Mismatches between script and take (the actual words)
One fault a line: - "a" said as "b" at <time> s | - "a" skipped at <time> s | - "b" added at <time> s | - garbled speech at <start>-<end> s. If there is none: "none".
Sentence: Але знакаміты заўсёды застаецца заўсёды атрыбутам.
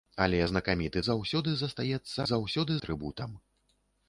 none